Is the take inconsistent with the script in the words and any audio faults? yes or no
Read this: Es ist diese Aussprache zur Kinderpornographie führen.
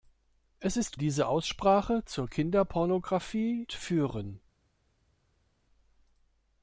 no